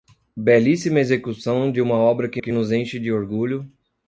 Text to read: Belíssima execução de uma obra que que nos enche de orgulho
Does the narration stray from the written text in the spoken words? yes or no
no